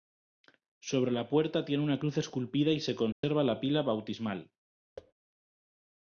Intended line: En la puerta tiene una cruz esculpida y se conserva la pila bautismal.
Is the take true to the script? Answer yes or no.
no